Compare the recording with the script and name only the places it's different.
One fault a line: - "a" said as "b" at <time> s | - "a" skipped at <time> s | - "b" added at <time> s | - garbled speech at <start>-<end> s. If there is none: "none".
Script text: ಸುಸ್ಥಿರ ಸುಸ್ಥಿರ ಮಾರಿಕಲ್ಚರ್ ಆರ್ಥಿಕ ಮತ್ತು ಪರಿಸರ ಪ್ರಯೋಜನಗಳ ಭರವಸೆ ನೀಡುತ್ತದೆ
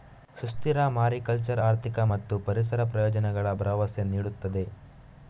- "ಸುಸ್ಥಿರ" skipped at 0.8 s